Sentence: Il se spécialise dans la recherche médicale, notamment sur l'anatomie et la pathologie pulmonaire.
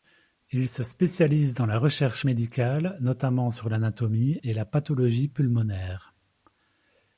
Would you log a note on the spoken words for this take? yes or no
no